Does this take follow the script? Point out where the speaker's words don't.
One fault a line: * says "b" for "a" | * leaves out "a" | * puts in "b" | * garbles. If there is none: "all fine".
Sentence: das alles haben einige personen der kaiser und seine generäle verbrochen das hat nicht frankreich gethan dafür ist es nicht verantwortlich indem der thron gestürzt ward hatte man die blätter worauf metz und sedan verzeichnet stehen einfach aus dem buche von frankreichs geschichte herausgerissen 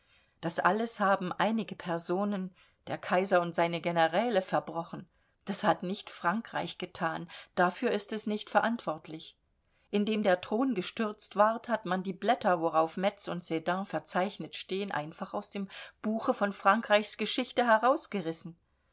* says "hat" for "hatte"